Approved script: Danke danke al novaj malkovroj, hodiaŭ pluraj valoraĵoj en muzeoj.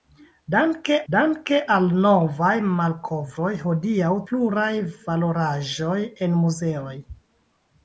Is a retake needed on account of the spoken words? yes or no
no